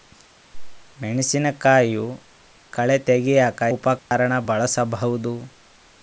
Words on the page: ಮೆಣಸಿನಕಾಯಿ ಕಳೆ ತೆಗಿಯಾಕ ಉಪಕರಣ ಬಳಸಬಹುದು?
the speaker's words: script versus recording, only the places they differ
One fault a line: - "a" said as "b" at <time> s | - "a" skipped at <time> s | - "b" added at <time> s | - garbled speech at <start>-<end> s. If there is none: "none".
none